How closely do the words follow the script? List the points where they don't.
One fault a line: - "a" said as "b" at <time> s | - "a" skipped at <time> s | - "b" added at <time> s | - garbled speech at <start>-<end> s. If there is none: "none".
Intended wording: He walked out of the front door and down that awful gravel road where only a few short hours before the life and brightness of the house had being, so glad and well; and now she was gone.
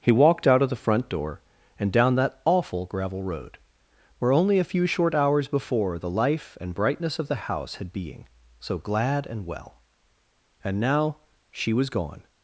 none